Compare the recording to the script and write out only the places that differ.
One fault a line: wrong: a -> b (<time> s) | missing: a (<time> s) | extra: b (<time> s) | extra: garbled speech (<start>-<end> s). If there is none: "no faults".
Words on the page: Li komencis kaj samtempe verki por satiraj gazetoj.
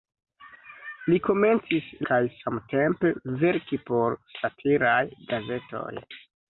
no faults